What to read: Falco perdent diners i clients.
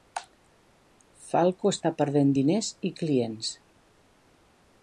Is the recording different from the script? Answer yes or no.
yes